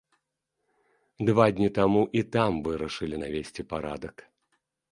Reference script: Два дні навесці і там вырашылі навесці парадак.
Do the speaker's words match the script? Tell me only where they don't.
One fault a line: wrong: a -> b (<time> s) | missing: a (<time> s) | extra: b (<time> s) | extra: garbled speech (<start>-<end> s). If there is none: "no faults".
wrong: навесці -> таму (1.8 s)